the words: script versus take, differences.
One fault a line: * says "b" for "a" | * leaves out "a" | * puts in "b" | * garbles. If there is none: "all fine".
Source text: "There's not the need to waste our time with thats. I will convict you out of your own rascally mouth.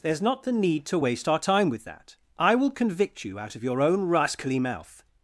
* says "that" for "thats"